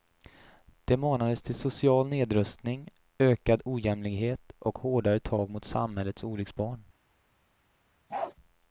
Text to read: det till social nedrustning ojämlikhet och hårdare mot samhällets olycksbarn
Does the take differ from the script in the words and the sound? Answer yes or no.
yes